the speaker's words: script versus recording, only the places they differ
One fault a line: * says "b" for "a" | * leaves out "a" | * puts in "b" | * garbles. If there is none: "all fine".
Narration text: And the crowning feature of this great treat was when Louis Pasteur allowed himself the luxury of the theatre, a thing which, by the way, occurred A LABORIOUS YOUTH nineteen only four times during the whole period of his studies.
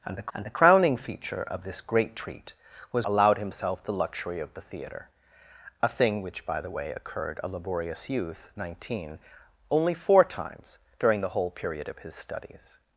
* puts in "and the"
* leaves out "when Louis Pasteur"